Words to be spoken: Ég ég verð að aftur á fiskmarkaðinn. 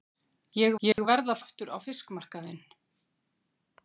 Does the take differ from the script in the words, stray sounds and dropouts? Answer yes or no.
yes